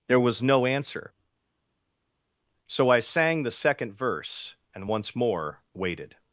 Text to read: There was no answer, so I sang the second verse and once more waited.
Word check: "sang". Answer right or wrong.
right